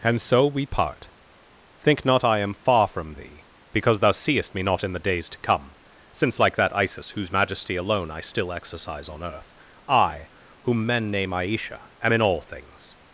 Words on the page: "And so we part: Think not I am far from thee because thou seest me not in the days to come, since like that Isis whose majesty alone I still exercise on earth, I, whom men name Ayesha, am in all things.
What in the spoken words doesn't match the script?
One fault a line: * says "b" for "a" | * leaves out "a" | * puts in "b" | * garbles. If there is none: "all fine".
all fine